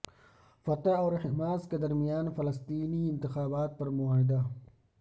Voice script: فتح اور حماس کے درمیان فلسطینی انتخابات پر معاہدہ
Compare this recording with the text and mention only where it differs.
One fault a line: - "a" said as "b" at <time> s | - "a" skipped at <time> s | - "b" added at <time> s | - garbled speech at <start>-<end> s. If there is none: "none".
none